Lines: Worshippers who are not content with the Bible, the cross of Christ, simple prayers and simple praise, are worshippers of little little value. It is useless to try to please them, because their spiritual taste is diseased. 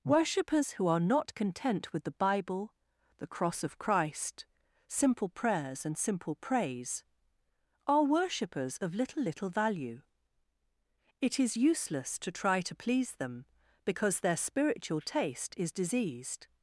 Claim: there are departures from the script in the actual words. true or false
false